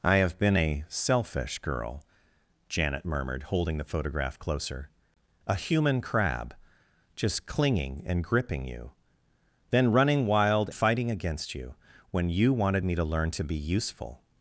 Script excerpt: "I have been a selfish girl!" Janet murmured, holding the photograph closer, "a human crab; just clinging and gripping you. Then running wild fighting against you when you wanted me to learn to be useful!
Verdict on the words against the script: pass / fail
pass